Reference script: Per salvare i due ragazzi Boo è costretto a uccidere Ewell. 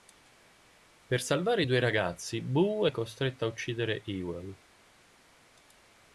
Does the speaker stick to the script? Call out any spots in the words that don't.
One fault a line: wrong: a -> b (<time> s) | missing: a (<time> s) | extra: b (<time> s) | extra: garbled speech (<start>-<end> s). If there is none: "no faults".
no faults